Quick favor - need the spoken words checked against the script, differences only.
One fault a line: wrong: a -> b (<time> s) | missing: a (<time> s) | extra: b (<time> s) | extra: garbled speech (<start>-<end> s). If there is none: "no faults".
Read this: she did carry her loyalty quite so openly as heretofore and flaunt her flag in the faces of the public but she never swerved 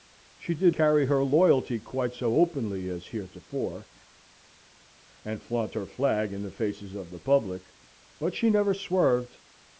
no faults